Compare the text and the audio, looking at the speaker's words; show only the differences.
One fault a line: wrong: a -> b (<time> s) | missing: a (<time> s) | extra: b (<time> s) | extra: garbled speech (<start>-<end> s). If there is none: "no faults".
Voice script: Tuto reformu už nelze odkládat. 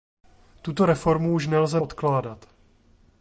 no faults